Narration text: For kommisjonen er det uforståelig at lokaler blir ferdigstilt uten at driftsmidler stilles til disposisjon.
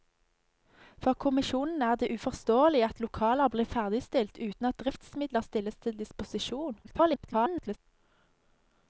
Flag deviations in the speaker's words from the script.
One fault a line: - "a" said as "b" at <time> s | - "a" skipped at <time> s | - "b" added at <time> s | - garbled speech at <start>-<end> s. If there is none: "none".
- garbled speech at 6.8-7.8 s